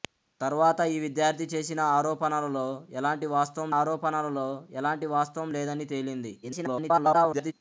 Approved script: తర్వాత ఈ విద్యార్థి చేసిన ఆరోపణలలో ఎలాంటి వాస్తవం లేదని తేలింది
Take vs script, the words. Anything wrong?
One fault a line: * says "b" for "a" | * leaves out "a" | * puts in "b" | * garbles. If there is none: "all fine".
* puts in "ఆరోపణలలో ఎలాంటి వాస్తవం"
* garbles